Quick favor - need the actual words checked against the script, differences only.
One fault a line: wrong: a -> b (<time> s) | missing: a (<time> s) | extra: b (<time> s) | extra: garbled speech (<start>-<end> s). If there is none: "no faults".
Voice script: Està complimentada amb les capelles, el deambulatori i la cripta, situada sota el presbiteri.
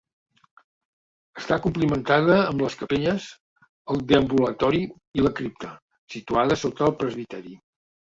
no faults